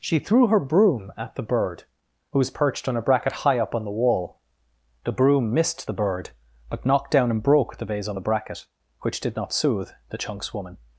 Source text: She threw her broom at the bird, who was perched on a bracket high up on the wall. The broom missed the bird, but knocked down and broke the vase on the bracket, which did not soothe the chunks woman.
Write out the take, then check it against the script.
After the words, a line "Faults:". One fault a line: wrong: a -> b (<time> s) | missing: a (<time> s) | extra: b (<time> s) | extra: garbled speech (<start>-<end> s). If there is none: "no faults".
She threw her broom at the bird, who was perched on a bracket high up on the wall. The broom missed the bird, but knocked down and broke the vase on the bracket, which did not soothe the chunks woman.
Faults:
no faults